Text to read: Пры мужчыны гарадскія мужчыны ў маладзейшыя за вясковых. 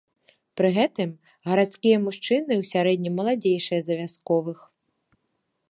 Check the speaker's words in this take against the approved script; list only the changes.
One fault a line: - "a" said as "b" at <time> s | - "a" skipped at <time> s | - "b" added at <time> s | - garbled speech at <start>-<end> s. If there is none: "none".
- "мужчыны" said as "гэтым" at 0.8 s
- "сярэднім" added at 2.7 s